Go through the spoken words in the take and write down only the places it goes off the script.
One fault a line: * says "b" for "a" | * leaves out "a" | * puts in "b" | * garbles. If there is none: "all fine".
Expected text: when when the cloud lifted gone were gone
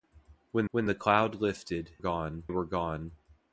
all fine